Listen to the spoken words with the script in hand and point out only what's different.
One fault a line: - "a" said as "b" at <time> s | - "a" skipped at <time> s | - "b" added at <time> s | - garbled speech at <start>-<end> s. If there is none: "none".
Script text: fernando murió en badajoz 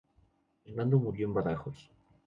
none